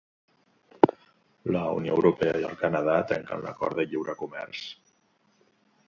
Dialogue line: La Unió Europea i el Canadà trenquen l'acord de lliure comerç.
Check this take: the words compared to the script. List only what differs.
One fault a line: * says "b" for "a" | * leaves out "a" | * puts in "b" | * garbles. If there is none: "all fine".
all fine